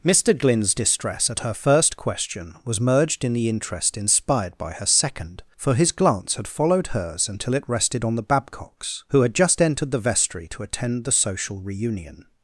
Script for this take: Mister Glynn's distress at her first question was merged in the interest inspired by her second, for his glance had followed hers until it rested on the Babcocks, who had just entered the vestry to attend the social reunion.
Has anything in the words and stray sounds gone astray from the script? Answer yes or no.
no